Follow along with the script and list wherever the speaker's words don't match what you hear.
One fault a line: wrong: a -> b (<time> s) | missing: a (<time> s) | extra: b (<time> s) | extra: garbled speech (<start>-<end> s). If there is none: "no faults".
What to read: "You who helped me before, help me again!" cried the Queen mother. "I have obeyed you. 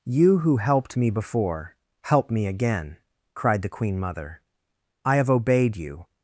no faults